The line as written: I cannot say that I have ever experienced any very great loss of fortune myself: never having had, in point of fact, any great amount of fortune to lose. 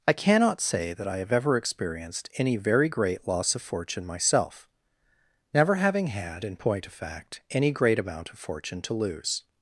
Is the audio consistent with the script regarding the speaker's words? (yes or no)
yes